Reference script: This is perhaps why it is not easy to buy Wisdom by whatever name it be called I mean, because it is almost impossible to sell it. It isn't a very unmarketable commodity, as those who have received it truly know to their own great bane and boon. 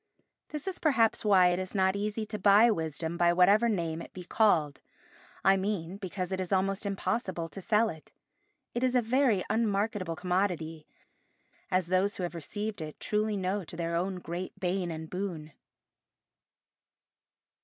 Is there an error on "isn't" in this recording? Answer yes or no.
yes